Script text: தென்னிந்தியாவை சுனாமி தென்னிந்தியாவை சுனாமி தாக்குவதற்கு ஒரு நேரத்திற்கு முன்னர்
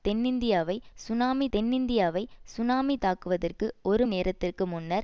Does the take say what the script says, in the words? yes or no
yes